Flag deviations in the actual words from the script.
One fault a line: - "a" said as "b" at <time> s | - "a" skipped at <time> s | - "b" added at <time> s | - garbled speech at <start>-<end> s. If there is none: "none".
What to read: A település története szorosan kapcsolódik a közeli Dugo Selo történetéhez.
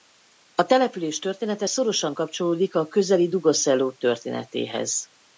none